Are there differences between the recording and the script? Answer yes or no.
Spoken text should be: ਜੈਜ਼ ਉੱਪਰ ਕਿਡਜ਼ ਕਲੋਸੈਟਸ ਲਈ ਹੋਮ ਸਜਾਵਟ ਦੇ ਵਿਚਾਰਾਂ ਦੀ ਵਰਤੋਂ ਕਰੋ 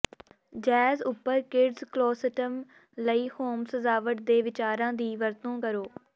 no